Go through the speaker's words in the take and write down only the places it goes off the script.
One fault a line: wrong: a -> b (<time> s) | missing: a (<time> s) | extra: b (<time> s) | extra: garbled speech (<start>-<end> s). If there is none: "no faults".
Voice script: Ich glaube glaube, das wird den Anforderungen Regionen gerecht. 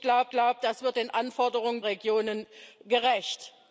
no faults